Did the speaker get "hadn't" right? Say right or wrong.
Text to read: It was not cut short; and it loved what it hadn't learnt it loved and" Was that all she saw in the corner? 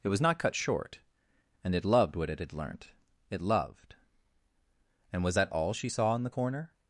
wrong